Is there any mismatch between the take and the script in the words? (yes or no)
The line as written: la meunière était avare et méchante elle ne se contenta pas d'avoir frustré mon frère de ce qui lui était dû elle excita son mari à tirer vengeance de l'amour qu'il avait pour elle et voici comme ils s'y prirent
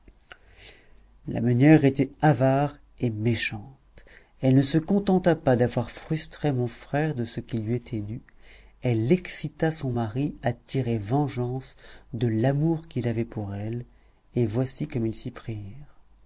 no